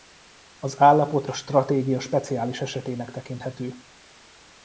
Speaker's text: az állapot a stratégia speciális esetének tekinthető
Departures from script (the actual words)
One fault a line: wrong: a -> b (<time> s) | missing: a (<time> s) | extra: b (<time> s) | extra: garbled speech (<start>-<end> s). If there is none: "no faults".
no faults